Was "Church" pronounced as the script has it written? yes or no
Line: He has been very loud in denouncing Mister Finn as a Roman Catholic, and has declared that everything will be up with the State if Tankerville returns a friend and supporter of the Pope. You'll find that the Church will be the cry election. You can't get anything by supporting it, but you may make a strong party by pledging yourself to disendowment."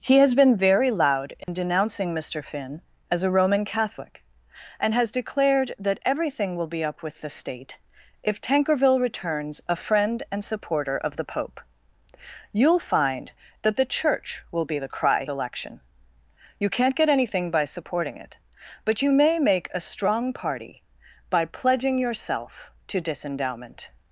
yes